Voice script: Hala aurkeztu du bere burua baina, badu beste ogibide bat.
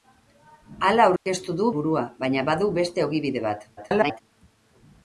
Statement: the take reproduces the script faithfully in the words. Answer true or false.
false